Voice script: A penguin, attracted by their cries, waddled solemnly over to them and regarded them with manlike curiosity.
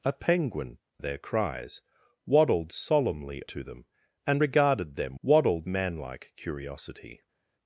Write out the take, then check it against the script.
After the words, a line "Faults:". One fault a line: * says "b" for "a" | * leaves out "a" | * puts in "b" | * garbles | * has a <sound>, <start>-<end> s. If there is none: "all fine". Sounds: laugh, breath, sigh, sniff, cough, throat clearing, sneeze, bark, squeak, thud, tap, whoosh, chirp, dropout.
A penguin, their cries, waddled solemnly to them and regarded them waddled manlike curiosity.
Faults:
* leaves out "attracted by"
* leaves out "over"
* says "waddled" for "with"